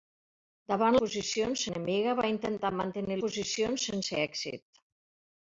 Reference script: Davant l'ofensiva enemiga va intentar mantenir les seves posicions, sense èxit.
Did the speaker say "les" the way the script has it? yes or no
no